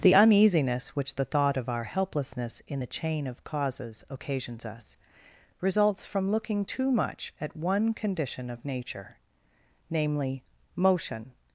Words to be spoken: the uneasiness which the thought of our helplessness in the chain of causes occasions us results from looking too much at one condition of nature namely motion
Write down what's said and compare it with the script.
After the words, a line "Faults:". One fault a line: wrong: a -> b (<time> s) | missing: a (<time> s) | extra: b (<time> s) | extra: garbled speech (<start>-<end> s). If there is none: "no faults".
the uneasiness which the thought of our helplessness in the chain of causes occasions us results from looking too much at one condition of nature namely motion
Faults:
no faults